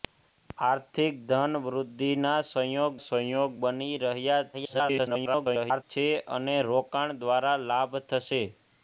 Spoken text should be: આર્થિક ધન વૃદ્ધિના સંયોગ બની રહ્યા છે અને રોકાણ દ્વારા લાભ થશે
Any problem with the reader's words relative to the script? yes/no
yes